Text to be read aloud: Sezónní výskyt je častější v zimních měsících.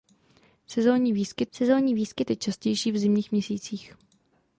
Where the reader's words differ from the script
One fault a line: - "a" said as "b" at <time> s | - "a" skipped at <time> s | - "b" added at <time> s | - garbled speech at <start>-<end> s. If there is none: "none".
- "sezónní výskyt" added at 1.5 s